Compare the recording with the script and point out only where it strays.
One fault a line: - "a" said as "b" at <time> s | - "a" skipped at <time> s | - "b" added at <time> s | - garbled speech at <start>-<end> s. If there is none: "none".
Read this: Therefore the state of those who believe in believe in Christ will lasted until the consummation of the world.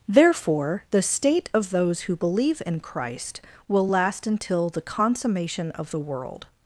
- "believe in" skipped at 2.8 s
- "lasted" said as "last" at 3.9 s